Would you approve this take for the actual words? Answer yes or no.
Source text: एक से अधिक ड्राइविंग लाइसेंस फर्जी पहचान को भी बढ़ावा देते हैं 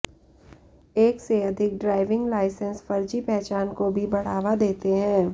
yes